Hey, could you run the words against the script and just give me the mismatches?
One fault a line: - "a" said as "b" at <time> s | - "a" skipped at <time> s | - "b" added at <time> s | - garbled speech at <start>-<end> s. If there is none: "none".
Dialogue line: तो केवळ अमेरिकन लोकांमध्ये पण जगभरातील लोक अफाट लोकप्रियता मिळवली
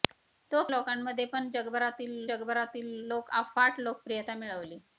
- "केवळ अमेरिकन" skipped at 0.6 s
- "जगभरातील" added at 2.3 s